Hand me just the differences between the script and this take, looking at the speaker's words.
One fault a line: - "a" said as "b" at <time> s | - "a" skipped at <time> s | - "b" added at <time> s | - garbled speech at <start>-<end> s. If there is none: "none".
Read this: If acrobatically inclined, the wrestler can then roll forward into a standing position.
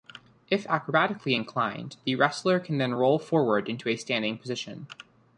none